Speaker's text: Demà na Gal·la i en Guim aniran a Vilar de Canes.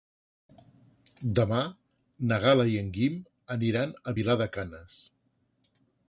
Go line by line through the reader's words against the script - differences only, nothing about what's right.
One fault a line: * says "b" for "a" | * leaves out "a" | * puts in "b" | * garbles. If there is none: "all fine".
all fine